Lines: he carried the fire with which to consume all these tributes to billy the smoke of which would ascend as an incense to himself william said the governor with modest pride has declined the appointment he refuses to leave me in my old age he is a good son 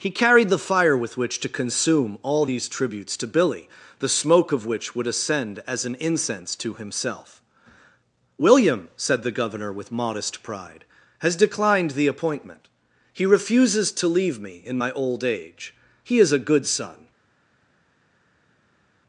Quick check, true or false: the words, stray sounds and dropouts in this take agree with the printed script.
true